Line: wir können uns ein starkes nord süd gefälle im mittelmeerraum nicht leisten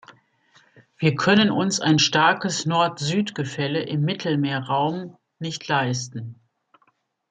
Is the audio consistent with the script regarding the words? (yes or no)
yes